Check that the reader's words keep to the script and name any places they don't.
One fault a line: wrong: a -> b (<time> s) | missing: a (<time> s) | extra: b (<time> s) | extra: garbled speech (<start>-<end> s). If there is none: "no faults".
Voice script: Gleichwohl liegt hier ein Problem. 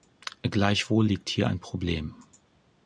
no faults